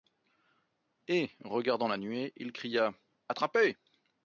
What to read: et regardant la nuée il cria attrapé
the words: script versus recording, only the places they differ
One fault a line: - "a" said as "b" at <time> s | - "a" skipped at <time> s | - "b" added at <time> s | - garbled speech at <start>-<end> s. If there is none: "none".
none